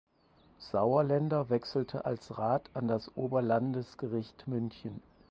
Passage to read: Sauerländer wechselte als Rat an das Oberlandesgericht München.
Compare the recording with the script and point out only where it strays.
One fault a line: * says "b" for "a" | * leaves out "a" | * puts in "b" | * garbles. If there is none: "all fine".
all fine